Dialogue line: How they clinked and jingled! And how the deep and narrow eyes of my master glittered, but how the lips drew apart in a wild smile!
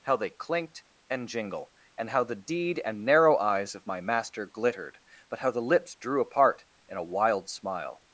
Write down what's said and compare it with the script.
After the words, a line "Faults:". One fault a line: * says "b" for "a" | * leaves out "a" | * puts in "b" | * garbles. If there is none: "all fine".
How they clinked and jingle! And how the deed and narrow eyes of my master glittered, but how the lips drew apart in a wild smile!
Faults:
* says "jingle" for "jingled"
* says "deed" for "deep"